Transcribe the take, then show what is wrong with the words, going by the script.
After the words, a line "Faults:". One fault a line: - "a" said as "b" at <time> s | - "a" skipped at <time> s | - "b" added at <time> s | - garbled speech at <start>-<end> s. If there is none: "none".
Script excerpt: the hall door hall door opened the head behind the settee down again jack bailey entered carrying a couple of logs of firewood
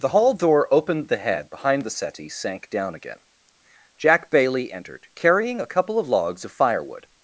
the hall door opened the head behind the settee sank down again jack bailey entered carrying a couple of logs of firewood
Faults:
- "hall door" skipped at 0.7 s
- "sank" added at 2.3 s